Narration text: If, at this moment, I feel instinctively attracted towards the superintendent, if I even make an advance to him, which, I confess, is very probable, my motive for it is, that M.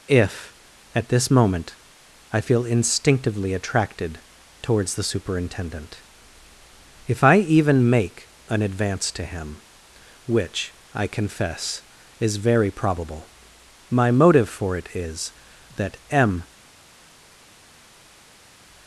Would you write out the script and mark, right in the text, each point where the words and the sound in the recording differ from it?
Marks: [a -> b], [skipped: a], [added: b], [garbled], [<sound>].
If, at this moment, I feel instinctively attracted towards the superintendent, if I even make an advance to him, which, I confess, is very probable, my motive for it is, that M.